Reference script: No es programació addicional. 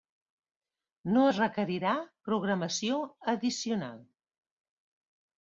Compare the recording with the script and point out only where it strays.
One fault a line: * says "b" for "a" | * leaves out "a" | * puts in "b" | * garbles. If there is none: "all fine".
* puts in "requerirà"